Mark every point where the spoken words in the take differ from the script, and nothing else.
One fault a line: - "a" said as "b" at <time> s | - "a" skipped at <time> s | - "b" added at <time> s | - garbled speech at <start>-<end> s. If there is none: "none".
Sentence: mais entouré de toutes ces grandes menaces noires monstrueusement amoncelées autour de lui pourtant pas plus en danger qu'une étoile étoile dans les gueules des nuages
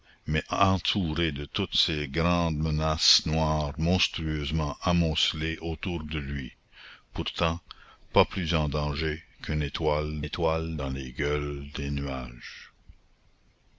none